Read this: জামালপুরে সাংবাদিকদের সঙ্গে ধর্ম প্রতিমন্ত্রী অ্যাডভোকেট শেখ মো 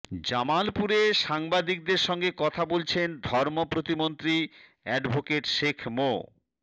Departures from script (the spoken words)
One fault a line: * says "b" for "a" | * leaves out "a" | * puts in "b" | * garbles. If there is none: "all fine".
* puts in "কথা বলছেন"